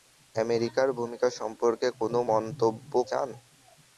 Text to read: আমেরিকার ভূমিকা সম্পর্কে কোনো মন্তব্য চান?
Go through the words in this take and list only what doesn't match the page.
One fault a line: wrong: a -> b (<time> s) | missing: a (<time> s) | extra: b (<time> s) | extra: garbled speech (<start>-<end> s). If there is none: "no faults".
no faults